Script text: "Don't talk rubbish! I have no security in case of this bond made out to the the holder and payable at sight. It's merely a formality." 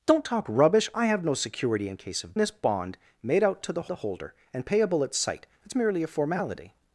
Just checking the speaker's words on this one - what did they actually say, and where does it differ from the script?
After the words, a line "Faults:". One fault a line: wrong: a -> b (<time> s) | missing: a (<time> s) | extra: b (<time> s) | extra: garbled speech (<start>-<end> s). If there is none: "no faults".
"Don't talk rubbish! I have no security in case of this bond made out to the the holder and payable at sight. It's merely a formality."
Faults:
no faults